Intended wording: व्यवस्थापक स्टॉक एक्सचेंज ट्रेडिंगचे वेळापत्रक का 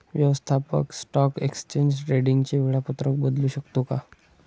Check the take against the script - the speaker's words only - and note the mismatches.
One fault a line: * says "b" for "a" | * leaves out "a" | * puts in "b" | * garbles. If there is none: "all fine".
* puts in "बदलू शकतो"